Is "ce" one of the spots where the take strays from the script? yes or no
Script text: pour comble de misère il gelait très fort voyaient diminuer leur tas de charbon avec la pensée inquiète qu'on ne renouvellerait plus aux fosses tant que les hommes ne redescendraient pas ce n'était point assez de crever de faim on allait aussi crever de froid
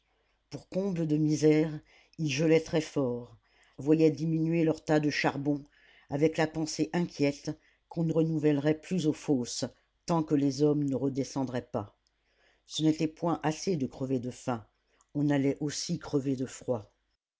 no